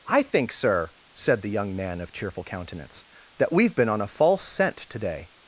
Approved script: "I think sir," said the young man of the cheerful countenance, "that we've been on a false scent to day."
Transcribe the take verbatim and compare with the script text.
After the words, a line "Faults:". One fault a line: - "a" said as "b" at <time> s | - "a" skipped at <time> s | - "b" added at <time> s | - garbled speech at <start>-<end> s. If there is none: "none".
"I think sir," said the young man of cheerful countenance, "that we've been on a false scent to day."
Faults:
- "the" skipped at 2.1 s